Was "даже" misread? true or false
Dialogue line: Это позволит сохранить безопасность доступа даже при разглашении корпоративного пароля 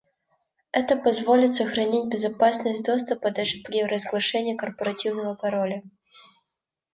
false